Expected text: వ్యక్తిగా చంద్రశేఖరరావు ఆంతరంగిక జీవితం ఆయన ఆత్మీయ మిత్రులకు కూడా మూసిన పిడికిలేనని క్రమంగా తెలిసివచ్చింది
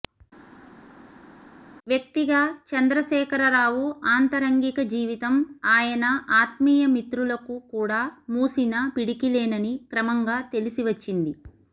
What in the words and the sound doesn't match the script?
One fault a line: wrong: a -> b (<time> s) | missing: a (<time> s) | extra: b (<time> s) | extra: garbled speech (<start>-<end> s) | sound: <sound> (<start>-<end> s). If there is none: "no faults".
no faults